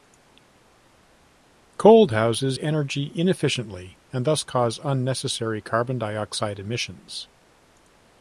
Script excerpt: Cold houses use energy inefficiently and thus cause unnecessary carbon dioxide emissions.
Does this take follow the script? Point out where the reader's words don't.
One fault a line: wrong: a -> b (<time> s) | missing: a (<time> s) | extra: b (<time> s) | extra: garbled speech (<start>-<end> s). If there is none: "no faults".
missing: use (2.6 s)